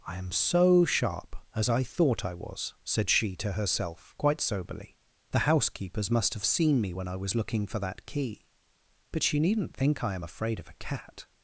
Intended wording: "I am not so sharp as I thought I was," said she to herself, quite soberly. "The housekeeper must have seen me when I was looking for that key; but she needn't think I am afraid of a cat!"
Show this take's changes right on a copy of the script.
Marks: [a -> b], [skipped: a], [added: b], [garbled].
"I am [skipped: not] so sharp as I thought I was," said she to herself, quite soberly. "The [housekeeper -> housekeepers] must have seen me when I was looking for that key; but she needn't think I am afraid of a cat!"